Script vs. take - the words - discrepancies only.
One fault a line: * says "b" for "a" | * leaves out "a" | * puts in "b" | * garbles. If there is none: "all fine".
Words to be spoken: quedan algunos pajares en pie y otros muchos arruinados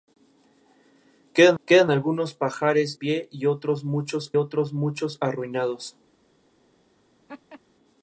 * puts in "quedan"
* leaves out "en"
* puts in "otros muchos"